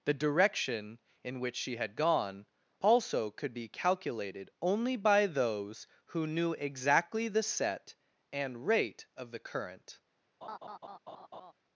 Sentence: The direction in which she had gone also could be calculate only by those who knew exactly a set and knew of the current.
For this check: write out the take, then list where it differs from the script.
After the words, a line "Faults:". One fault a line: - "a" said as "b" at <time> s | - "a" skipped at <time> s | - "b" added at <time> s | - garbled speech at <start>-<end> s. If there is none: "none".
The direction in which she had gone also could be calculated only by those who knew exactly the set and rate of the current.
Faults:
- "calculate" said as "calculated" at 3.7 s
- "a" said as "the" at 7.3 s
- "knew" said as "rate" at 8.7 s